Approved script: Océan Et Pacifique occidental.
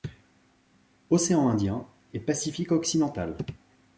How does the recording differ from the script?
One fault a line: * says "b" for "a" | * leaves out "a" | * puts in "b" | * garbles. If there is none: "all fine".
* puts in "Indien"